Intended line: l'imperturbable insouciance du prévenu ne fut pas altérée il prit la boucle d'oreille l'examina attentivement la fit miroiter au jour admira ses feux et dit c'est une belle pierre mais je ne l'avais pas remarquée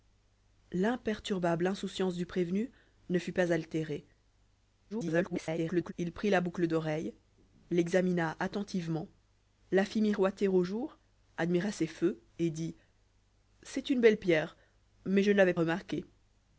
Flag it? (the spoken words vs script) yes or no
yes